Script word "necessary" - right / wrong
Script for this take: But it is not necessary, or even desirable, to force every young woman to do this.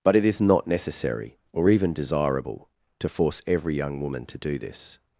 right